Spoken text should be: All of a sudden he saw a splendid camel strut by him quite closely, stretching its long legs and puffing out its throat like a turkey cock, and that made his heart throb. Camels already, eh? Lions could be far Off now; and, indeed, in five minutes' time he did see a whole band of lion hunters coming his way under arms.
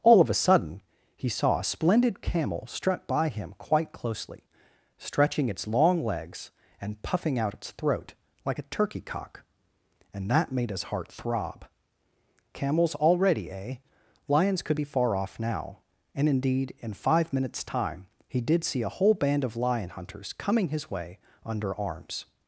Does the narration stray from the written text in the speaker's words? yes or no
no